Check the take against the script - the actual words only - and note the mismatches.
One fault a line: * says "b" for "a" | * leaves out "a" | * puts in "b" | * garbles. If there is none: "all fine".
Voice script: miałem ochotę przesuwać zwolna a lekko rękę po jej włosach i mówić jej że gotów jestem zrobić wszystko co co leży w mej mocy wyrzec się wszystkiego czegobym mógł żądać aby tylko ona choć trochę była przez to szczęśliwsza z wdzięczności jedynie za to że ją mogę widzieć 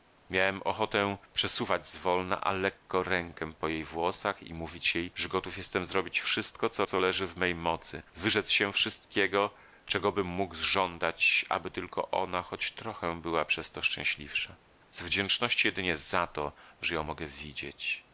all fine